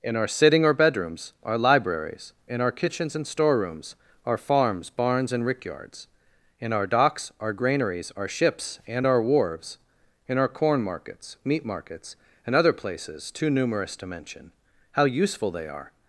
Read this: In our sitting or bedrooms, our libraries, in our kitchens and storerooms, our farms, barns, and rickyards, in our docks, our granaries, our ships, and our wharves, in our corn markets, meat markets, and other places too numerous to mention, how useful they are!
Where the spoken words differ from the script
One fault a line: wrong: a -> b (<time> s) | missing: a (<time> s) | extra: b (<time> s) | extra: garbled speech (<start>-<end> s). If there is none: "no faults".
no faults